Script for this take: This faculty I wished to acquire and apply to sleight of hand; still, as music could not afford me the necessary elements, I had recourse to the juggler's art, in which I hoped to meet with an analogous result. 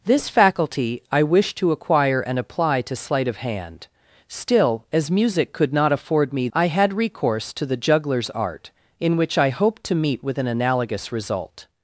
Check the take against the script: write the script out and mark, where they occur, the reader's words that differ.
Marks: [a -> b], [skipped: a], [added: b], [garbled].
This faculty I wished to acquire and apply to sleight of hand; still, as music could not afford me [skipped: the necessary elements,] I had recourse to the juggler's art, in which I hoped to meet with an analogous result.